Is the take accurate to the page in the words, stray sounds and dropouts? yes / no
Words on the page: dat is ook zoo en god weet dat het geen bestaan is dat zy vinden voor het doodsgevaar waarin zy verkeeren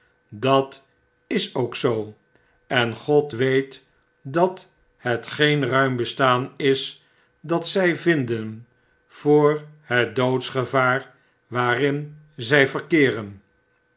no